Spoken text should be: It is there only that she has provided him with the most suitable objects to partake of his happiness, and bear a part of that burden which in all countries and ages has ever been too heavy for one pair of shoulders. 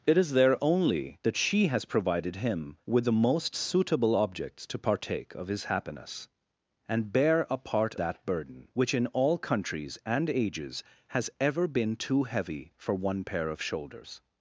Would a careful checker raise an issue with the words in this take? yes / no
yes